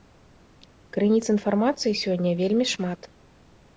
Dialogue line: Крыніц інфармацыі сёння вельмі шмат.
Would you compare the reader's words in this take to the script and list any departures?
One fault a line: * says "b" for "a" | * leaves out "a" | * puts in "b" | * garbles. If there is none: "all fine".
all fine